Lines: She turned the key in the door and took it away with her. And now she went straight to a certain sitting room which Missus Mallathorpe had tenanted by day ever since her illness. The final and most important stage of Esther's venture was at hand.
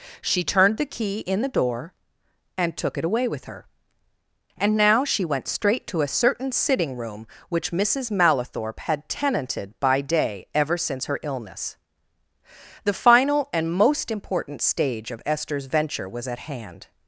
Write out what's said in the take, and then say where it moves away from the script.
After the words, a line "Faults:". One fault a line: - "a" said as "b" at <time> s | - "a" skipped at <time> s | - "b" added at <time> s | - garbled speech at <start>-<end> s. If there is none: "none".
She turned the key in the door and took it away with her. And now she went straight to a certain sitting room which Missus Mallathorpe had tenanted by day ever since her illness. The final and most important stage of Esther's venture was at hand.
Faults:
none